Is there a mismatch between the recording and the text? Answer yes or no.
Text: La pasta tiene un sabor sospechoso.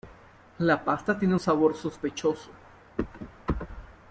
no